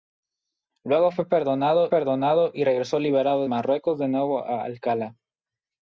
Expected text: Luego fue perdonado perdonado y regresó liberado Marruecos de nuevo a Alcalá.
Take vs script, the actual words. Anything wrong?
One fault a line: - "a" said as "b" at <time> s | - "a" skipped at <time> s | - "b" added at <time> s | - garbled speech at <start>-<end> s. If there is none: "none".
none